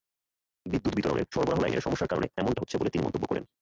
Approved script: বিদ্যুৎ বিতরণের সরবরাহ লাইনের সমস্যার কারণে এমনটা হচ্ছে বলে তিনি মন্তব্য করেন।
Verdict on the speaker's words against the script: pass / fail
pass